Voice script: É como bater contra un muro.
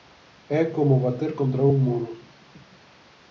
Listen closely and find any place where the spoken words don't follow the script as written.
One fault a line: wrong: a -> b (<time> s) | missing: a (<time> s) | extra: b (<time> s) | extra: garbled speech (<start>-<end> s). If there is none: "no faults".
no faults